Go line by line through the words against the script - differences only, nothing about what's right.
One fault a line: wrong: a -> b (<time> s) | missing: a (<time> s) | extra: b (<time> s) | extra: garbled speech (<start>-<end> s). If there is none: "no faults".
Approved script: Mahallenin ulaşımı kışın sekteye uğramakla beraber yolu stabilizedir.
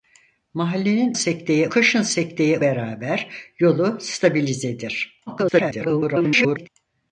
wrong: ulaşımı -> sekteye (1.1 s)
missing: uğramakla (2.6 s)
extra: garbled speech (5.3-6.7 s)